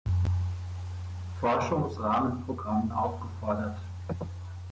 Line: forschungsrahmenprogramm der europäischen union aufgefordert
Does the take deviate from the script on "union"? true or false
true